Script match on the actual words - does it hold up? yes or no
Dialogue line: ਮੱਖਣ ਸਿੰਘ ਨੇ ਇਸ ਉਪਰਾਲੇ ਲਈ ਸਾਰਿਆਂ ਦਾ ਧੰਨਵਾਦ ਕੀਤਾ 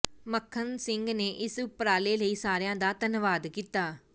yes